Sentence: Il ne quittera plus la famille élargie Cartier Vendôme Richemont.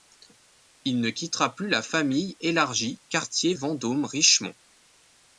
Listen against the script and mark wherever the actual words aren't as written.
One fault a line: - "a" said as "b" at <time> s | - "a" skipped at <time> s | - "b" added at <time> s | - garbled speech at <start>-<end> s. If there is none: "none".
none